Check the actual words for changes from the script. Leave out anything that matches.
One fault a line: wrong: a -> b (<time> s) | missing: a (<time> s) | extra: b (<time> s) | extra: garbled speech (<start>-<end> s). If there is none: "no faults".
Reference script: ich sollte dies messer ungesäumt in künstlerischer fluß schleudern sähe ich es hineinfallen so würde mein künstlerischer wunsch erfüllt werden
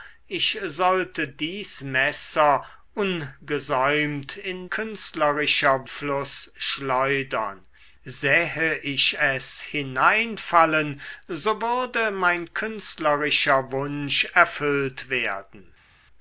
no faults